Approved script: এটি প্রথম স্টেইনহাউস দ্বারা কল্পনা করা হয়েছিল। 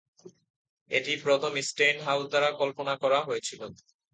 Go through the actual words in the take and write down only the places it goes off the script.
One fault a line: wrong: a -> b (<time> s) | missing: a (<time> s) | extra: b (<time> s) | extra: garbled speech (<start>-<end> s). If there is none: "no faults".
no faults